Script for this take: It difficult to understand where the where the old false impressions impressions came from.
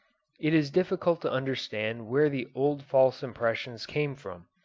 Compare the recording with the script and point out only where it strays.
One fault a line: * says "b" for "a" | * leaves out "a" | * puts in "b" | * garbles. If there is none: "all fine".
* puts in "is"
* leaves out "where the"
* leaves out "impressions"